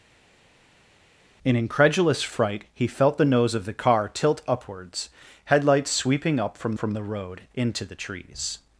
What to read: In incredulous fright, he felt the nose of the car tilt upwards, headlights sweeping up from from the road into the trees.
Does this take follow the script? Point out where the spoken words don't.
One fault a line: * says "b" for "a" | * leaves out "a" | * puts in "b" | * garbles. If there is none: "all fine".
all fine